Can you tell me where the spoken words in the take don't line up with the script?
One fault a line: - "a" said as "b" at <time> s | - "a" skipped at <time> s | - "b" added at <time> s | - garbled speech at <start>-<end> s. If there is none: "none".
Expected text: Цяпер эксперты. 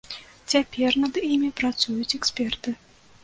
- "над імі працуюць" added at 1.0 s